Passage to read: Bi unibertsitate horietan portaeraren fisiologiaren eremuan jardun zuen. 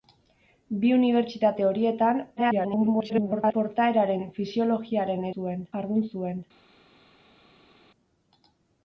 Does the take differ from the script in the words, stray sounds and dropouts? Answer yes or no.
yes